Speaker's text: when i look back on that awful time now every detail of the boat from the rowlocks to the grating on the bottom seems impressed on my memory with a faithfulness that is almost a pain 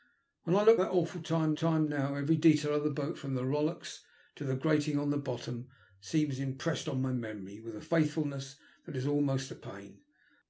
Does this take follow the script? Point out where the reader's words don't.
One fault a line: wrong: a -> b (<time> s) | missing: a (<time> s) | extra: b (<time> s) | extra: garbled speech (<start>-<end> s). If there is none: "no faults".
missing: back on (0.8 s)
extra: time (1.5 s)